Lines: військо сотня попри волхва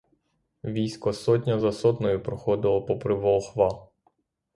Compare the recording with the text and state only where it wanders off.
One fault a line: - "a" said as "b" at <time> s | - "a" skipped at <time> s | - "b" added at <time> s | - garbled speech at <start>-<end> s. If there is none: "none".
- "за сотнею проходило" added at 1.6 s